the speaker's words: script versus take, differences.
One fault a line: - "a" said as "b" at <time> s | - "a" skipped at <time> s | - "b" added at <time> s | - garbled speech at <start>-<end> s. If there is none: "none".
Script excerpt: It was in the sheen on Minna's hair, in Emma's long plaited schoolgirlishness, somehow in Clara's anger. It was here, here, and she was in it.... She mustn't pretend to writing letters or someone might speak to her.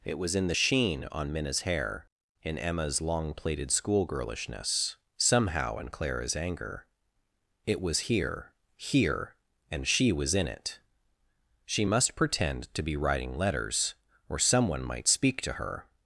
- "mustn't" said as "must" at 11.8 s
- "be" added at 12.8 s